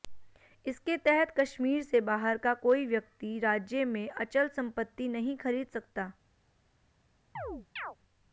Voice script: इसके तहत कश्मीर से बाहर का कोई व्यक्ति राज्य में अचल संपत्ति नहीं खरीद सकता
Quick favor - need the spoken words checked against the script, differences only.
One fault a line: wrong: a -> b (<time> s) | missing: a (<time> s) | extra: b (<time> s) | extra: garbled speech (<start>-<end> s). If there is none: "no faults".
no faults